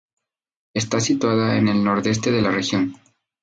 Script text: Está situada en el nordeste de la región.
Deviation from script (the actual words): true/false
false